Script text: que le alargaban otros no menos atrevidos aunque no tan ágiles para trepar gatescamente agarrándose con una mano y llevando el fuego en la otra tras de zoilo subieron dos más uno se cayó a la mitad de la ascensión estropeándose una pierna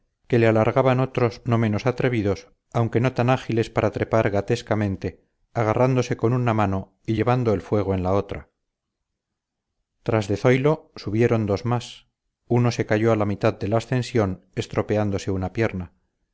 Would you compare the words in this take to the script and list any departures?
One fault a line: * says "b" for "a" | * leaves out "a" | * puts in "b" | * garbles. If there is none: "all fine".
all fine